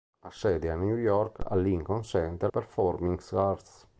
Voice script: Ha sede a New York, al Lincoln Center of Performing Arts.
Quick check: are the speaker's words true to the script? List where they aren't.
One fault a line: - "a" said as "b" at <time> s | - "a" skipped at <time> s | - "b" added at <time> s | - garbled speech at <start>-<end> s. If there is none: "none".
- "of" skipped at 2.5 s